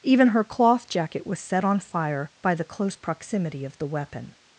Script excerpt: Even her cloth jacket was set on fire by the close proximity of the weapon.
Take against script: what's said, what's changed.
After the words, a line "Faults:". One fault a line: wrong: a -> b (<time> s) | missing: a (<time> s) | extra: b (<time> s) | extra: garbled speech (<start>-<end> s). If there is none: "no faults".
Even her cloth jacket was set on fire by the close proximity of the weapon.
Faults:
no faults